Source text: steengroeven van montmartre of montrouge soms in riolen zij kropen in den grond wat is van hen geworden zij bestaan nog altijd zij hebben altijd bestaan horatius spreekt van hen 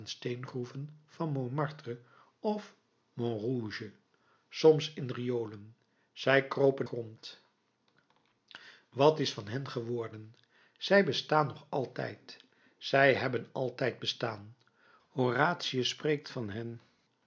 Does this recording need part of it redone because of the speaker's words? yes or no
yes